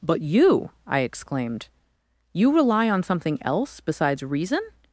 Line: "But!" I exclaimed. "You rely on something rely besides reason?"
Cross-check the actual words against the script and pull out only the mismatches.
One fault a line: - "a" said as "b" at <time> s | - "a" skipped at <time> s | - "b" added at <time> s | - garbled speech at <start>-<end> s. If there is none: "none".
- "you" added at 0.2 s
- "rely" said as "else" at 3.4 s